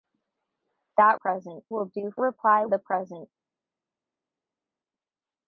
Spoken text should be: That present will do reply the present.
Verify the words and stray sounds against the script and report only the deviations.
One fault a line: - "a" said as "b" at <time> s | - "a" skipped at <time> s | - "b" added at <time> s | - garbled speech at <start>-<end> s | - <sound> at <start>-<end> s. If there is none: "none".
none